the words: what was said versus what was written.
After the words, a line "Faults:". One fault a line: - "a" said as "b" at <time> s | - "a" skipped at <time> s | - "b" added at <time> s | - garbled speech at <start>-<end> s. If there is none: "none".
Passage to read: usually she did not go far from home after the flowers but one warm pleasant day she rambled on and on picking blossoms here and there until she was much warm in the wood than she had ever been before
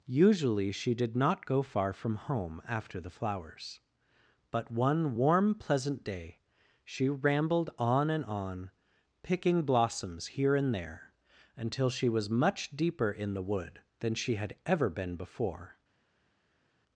usually she did not go far from home after the flowers but one warm pleasant day she rambled on and on picking blossoms here and there until she was much deeper in the wood than she had ever been before
Faults:
- "warm" said as "deeper" at 12.7 s